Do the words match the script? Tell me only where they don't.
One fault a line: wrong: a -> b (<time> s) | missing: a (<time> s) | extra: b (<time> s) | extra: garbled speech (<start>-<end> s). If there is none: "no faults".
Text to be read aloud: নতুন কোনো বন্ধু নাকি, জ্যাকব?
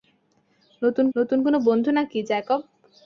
extra: নতুন (1.1 s)